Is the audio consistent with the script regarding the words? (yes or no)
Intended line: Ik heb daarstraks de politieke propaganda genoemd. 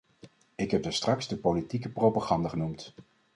yes